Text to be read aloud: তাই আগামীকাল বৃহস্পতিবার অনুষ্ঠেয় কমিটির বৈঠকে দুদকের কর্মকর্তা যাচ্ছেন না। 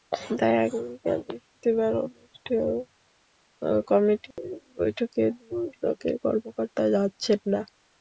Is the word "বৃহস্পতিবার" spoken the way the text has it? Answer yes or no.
yes